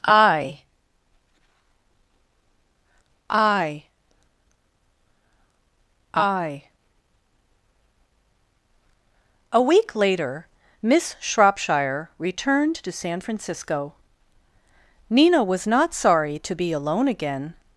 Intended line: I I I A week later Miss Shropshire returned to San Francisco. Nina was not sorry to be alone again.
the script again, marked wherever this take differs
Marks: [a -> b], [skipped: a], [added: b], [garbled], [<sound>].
I I I A week later Miss Shropshire returned to San Francisco. Nina was not sorry to be alone again.